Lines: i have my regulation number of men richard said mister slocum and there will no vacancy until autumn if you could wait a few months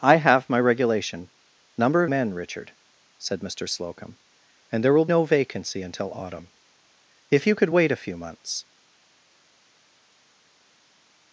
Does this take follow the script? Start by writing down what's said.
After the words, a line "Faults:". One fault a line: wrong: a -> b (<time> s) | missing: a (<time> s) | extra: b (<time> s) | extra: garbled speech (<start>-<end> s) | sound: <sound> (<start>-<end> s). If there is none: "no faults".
i have my regulation number of men richard said mister slocum and there will no vacancy until autumn if you could wait a few months
Faults:
no faults